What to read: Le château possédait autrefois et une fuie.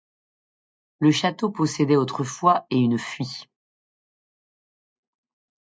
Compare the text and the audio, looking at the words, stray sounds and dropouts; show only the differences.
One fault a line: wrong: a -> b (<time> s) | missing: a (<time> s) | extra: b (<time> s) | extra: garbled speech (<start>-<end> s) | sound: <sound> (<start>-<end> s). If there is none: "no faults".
no faults